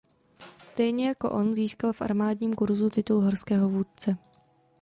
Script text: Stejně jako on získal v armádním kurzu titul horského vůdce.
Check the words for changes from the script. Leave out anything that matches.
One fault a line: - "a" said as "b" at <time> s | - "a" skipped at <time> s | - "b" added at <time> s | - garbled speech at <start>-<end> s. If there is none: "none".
none